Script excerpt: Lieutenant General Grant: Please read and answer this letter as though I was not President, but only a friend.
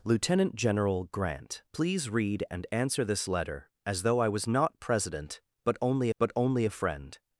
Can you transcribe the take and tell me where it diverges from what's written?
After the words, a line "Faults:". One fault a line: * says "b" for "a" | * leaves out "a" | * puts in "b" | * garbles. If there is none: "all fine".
Lieutenant General Grant: Please read and answer this letter as though I was not President, but only but only a friend.
Faults:
* puts in "but only"